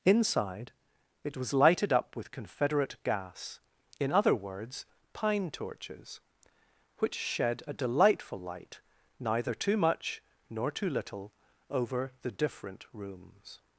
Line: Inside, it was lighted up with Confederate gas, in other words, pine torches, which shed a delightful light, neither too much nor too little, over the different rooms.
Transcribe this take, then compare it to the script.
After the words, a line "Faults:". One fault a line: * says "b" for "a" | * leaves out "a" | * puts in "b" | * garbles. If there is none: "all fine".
Inside, it was lighted up with Confederate gas, in other words, pine torches, which shed a delightful light, neither too much nor too little, over the different rooms.
Faults:
all fine